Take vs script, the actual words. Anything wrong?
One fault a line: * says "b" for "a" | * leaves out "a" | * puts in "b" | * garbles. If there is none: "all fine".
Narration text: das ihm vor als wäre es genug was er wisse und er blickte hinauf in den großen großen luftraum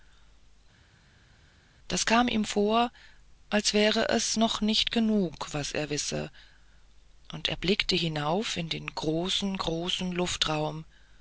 * puts in "kam"
* puts in "noch nicht"